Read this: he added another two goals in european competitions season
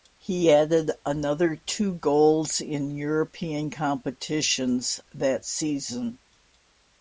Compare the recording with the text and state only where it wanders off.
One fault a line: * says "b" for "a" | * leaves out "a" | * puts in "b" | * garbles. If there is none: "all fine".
* puts in "that"